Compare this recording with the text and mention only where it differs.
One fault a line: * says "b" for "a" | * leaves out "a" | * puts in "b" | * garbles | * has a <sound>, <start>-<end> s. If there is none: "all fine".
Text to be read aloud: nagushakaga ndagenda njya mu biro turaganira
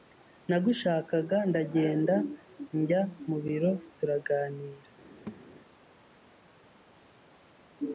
* has a thud, 5.3-5.5 s